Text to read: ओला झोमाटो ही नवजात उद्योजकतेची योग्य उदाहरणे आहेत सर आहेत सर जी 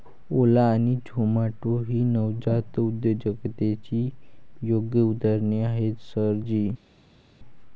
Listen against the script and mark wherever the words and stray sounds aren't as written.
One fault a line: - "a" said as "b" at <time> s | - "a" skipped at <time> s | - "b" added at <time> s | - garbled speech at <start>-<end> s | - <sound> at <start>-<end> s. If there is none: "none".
- "आणि" added at 0.7 s
- "आहेत सर" skipped at 6.3 s